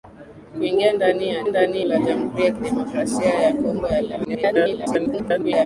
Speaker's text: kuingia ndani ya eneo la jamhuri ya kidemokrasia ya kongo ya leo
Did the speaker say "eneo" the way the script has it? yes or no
no